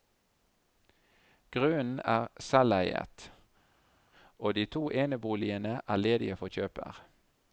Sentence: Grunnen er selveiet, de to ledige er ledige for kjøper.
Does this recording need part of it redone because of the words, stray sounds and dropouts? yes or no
yes